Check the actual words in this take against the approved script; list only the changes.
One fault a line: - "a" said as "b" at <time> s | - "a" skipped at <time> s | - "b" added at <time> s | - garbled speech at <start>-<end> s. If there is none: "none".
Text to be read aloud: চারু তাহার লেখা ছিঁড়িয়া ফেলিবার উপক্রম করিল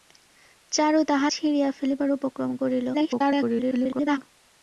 - "লেখা" skipped at 1.3 s
- garbled speech at 2.9-4.2 s